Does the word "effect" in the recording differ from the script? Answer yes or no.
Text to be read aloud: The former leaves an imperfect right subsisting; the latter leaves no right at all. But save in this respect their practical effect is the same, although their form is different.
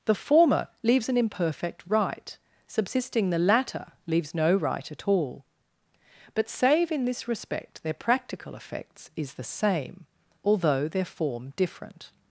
yes